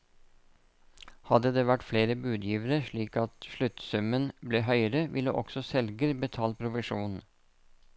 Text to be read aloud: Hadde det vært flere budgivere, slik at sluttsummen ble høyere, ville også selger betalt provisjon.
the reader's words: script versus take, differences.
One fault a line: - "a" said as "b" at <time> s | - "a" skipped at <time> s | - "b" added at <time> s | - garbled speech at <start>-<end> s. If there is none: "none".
none